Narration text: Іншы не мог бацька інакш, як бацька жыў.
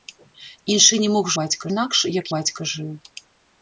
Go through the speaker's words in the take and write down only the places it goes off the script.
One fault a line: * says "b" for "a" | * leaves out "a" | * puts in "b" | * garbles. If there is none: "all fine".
all fine